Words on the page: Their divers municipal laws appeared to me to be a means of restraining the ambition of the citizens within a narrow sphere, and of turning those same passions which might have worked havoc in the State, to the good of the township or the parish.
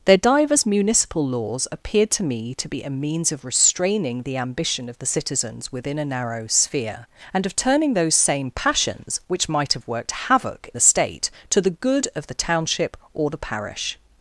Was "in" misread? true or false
true